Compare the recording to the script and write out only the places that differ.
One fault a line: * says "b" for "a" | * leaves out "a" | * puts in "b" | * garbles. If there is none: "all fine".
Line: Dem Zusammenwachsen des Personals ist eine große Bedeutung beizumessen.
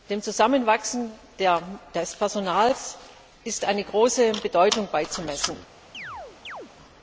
all fine